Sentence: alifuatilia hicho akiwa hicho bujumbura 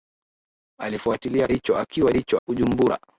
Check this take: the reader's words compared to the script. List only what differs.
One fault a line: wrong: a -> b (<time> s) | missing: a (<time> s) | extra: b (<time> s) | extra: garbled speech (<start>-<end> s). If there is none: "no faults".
no faults